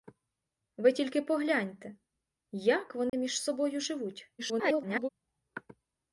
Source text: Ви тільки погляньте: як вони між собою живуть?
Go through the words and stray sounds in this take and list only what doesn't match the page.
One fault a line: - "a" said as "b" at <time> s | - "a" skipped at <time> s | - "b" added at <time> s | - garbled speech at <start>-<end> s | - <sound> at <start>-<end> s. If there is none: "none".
- dropout at 3.1-3.1 s
- garbled speech at 4.4-5.1 s